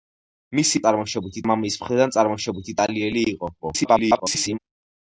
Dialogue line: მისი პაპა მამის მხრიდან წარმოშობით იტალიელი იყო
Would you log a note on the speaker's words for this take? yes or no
yes